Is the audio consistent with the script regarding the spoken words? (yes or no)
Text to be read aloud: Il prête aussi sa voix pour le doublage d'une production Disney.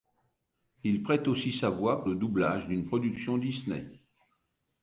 no